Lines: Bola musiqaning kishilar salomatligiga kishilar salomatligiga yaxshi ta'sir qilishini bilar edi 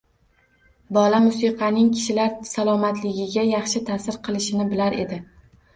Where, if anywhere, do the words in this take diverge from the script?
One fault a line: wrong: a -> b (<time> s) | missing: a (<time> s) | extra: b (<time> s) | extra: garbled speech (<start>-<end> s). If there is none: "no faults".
missing: kishilar salomatligiga (3.5 s)